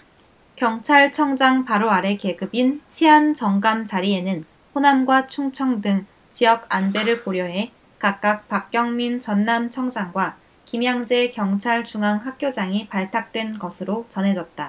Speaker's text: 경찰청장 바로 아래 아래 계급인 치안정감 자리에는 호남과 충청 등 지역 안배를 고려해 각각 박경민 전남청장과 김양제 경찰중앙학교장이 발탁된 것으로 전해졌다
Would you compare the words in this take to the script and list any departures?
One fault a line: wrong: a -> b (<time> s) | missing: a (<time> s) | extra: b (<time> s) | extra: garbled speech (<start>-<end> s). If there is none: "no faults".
missing: 아래 (2.2 s)